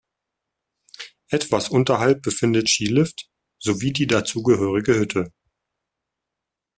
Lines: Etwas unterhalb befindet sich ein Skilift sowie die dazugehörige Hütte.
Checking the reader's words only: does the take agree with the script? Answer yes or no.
no